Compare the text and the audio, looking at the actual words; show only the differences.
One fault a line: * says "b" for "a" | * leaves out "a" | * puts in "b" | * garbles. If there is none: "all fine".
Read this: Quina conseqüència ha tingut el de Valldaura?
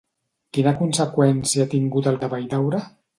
all fine